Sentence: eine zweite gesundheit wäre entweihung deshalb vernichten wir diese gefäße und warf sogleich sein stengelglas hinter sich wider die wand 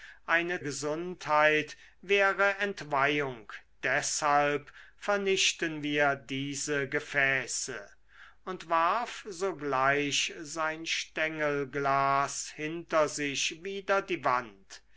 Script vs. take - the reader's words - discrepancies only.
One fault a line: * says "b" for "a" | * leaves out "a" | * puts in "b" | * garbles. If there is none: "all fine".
* leaves out "zweite"